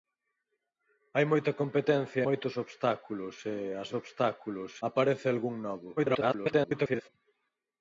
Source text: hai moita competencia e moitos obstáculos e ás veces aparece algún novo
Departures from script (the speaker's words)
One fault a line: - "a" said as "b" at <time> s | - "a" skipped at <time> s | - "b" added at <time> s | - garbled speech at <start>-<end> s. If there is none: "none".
- "e" skipped at 2.2 s
- "veces" said as "obstáculos" at 4.0 s
- garbled speech at 6.0-7.1 s